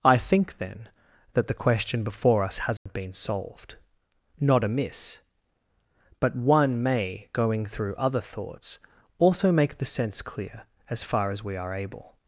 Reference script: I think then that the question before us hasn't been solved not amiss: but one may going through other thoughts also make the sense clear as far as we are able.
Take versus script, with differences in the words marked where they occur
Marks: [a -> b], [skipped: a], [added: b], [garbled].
I think then that the question before us hasn't been solved not amiss: but one may going through other thoughts also make the sense clear as far as we are able.